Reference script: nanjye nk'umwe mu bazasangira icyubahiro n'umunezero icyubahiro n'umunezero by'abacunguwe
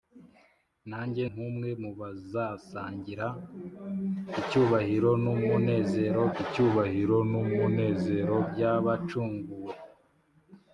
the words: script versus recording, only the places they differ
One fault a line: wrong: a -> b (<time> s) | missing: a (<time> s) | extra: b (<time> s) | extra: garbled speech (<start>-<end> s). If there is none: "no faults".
no faults